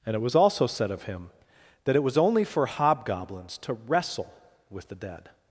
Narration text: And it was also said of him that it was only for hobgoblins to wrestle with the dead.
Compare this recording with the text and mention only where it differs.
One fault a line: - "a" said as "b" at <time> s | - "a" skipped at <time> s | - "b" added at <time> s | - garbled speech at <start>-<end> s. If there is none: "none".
none